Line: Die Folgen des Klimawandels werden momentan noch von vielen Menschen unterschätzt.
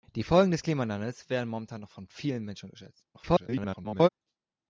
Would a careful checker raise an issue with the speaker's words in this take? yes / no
yes